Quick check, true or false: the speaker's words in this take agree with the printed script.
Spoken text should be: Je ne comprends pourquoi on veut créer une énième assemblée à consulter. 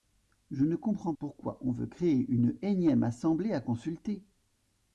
true